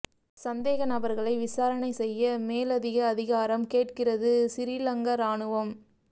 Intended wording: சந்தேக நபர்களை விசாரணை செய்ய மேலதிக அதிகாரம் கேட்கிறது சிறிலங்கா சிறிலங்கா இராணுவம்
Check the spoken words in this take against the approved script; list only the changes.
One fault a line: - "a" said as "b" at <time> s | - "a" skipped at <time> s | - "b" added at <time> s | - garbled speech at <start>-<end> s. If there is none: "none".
- "சிறிலங்கா" skipped at 5.2 s